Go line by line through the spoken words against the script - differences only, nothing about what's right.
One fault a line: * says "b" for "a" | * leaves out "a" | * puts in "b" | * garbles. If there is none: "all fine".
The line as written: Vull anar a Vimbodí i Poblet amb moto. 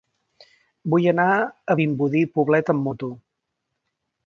all fine